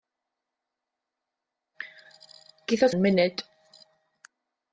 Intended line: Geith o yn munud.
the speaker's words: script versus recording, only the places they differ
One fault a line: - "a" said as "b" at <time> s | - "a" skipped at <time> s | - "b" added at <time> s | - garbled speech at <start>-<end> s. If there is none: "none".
none